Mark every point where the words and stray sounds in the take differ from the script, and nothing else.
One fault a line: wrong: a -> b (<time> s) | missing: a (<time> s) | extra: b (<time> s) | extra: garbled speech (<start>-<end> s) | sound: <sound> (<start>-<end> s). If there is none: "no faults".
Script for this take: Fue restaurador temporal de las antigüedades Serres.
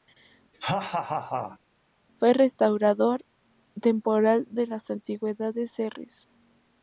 sound: laugh (0.5-1.6 s)